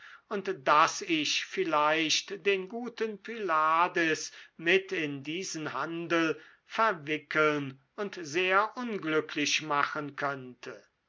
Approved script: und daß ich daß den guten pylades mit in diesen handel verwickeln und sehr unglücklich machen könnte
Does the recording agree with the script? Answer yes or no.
no